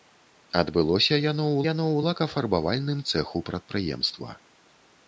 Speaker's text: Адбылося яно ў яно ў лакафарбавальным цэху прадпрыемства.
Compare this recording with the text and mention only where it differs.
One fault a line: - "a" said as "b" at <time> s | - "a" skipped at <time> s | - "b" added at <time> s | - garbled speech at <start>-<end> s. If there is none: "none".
none